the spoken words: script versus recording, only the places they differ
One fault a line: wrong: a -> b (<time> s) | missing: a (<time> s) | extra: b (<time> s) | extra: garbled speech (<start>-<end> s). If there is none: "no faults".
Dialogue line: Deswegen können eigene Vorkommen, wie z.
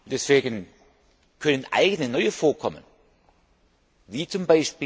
extra: neue (2.1 s)